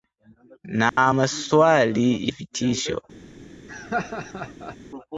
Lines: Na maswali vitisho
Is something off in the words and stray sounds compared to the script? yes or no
yes